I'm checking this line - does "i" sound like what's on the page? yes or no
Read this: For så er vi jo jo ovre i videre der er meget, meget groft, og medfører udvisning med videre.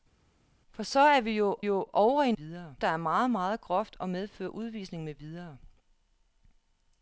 yes